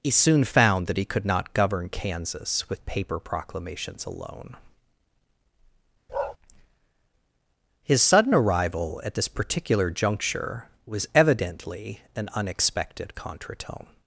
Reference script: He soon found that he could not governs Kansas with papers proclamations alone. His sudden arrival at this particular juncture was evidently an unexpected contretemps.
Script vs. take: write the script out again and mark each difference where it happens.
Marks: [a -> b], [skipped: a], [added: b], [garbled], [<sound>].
He soon found that he could not [governs -> govern] Kansas with [papers -> paper] proclamations alone. [bark] His sudden arrival at this particular juncture was evidently an unexpected contretemps.